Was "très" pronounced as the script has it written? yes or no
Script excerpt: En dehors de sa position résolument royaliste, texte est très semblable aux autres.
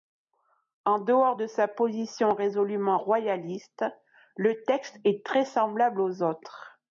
yes